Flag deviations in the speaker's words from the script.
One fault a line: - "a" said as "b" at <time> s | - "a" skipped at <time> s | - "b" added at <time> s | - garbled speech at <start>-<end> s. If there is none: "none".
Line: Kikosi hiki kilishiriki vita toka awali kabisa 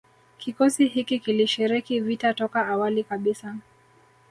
none